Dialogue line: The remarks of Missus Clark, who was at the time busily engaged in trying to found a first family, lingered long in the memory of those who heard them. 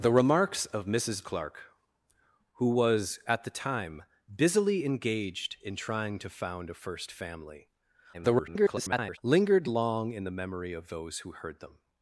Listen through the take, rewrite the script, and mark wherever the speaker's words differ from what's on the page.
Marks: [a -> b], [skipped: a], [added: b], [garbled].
The remarks of Missus Clark, who was at the time busily engaged in trying to found a first family, [garbled] lingered long in the memory of those who heard them.